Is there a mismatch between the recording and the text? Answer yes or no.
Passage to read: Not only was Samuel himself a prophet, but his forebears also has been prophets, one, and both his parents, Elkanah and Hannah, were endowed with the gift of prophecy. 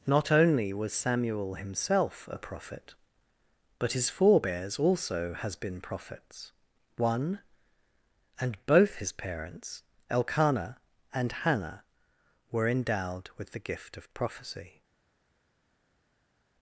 no